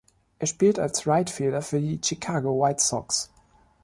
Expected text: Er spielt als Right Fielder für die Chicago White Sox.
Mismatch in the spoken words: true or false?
false